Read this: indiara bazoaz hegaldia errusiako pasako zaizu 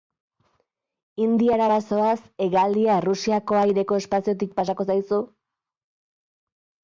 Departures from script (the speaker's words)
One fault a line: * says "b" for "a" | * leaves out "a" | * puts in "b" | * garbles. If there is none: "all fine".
* puts in "aireko espaziotik"